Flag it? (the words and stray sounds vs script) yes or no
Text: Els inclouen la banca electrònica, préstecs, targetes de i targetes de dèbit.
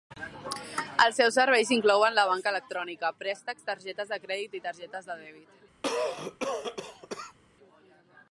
yes